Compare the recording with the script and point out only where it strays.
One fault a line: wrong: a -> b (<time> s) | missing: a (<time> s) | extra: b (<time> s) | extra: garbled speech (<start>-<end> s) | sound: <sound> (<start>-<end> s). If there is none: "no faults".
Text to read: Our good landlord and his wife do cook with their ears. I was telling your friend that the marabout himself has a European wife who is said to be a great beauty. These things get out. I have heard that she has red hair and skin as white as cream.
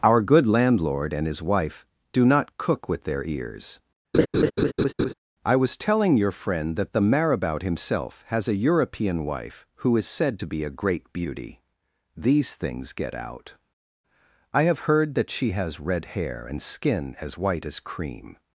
extra: not (2.2 s)
sound: laugh (4.1-5.1 s)